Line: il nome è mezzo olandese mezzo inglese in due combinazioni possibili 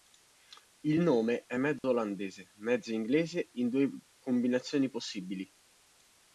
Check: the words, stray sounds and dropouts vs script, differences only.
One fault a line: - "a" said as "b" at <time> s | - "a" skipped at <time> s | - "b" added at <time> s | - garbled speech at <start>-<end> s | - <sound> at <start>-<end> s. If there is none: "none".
- dropout at 1.8-1.8 s